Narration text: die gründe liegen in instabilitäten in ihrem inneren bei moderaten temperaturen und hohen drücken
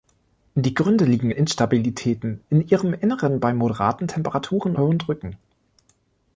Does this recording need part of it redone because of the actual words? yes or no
yes